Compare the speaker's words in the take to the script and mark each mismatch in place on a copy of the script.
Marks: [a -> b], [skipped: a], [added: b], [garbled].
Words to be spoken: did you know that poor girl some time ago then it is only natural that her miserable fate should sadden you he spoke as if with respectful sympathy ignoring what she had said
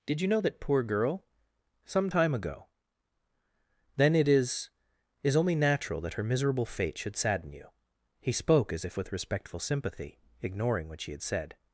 did you know that poor girl some time ago then it is [added: is] only natural that her miserable fate should sadden you he spoke as if with respectful sympathy ignoring what she had said